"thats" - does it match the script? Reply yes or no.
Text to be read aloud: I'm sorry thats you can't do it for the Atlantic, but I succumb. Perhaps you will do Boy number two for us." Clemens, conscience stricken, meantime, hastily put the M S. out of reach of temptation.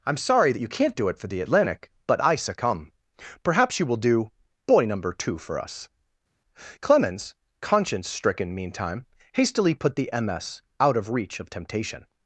no